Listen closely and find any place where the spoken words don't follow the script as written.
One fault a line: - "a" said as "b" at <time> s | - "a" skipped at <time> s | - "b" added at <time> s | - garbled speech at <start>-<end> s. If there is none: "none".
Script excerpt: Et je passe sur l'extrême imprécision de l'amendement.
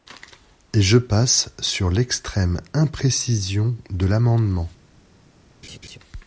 none